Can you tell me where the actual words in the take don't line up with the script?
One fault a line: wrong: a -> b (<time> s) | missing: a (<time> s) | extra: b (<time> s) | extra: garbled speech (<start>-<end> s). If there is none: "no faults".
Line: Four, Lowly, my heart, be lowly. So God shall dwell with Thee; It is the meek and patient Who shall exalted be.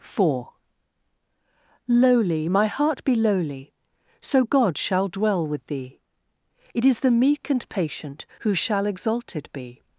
no faults